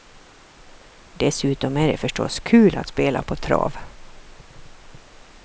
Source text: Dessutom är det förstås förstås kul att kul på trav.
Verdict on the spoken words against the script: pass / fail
fail